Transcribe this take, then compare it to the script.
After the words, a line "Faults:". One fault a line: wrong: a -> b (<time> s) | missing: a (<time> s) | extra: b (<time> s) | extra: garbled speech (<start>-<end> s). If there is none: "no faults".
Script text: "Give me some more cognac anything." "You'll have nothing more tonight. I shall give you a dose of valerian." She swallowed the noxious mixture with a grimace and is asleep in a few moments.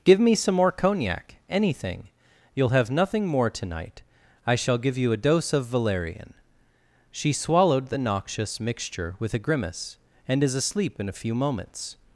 "Give me some more cognac anything." "You'll have nothing more tonight. I shall give you a dose of valerian." She swallowed the noxious mixture with a grimace and is asleep in a few moments.
Faults:
no faults